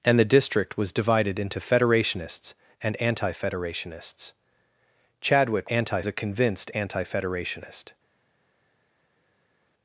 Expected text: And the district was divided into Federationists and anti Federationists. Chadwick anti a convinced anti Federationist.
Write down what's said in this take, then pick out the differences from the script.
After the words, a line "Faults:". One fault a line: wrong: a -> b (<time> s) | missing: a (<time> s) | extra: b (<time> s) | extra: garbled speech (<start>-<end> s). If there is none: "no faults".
And the district was divided into Federationists and anti Federationists. Chadwick anti a convinced anti Federationist.
Faults:
no faults